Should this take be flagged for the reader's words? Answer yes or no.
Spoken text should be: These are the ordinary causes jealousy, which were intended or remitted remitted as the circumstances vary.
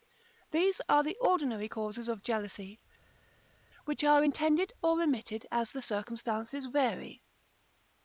yes